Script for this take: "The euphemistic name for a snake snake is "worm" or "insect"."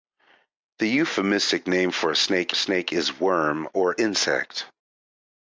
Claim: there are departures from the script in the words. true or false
false